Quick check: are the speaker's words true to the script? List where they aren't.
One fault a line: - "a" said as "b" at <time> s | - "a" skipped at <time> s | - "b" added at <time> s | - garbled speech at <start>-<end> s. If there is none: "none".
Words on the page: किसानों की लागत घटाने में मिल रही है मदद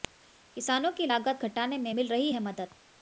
none